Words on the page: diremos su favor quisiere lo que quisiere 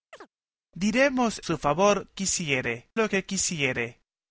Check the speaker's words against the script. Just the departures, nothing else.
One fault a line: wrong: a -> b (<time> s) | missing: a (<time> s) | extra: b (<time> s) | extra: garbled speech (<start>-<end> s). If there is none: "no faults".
no faults